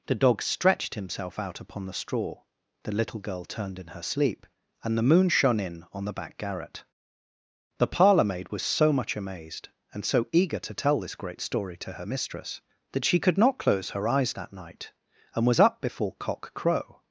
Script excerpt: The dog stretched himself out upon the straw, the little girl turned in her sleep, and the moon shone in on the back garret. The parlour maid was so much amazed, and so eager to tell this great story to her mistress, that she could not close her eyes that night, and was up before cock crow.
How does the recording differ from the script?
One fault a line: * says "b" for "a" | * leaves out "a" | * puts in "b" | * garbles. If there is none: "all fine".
all fine